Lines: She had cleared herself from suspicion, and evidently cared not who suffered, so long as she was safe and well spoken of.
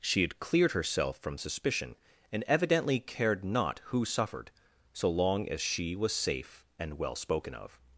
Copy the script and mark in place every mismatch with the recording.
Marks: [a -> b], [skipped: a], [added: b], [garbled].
She had cleared herself from suspicion, and evidently cared not who suffered, so long as she was safe and well spoken of.